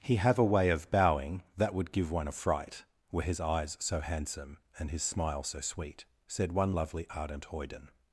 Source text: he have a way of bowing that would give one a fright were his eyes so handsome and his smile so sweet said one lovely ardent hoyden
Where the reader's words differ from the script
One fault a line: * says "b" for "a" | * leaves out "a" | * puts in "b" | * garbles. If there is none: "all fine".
all fine